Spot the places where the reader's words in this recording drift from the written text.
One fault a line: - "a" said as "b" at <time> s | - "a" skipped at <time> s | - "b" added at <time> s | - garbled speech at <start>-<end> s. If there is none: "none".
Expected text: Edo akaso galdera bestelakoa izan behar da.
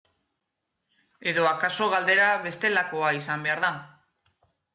none